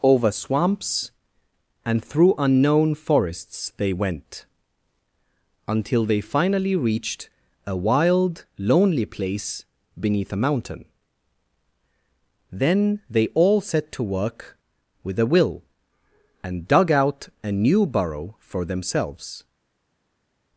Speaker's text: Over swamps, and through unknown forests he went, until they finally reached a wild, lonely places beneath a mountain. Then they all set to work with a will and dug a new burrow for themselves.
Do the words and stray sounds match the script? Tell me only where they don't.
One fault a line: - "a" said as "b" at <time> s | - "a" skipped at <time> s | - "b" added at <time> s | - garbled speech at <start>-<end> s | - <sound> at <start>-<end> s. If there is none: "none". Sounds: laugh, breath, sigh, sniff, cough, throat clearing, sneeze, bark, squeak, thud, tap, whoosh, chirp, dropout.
- "he" said as "they" at 3.8 s
- "places" said as "place" at 9.1 s
- "out" added at 16.9 s